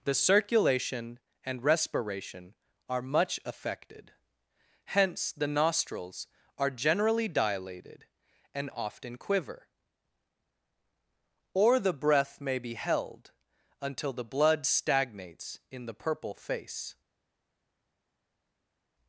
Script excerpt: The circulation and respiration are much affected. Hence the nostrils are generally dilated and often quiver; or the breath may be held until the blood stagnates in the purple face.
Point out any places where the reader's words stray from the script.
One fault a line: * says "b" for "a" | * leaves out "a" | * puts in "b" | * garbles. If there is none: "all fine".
all fine